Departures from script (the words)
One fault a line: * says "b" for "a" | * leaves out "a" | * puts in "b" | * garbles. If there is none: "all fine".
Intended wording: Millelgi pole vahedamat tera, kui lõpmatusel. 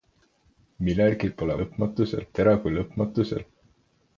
* says "lõpmatusel" for "vahedamat"